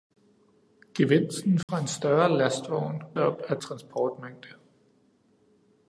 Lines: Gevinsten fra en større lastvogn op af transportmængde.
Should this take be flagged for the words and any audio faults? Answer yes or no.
yes